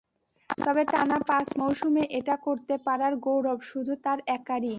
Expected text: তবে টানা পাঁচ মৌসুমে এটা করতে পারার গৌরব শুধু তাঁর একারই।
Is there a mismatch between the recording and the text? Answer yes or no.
no